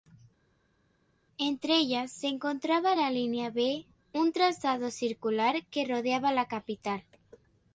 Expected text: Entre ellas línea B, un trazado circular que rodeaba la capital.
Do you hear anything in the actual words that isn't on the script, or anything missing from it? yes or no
yes